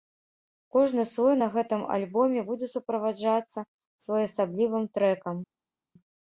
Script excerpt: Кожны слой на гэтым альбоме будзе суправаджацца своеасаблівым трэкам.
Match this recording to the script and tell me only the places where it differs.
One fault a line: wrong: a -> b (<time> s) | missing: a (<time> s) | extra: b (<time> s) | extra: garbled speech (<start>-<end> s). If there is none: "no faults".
no faults